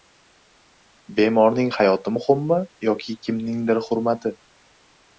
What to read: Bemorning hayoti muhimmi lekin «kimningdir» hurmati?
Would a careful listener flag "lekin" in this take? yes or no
yes